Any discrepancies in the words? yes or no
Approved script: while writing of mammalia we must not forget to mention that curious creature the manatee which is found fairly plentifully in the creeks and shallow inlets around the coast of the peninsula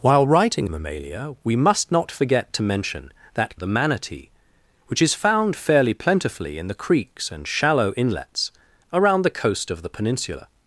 yes